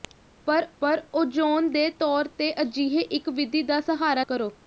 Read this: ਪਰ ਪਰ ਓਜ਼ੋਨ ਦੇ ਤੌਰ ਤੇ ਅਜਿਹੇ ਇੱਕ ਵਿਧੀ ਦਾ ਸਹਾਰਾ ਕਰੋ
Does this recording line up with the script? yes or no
yes